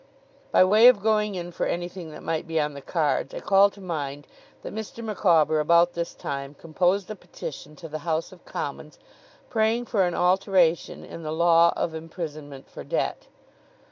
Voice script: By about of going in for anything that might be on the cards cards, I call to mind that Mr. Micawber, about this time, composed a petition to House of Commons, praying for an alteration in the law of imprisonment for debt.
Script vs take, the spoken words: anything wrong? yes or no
yes